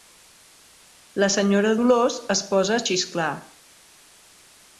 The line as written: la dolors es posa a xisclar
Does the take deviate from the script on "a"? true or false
false